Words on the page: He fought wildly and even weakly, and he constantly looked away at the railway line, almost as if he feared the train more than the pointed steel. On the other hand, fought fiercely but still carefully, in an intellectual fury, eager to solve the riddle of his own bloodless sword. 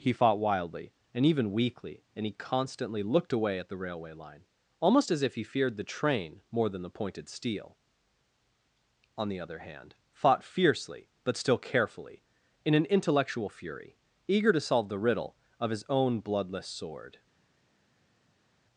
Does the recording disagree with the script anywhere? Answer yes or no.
no